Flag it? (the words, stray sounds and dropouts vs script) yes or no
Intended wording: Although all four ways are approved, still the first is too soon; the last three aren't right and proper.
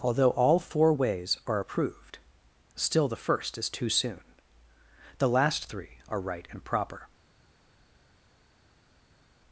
yes